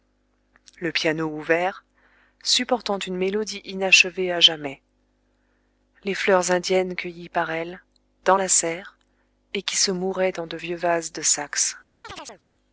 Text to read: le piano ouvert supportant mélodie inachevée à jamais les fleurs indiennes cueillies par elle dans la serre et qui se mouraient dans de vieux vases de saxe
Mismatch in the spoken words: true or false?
true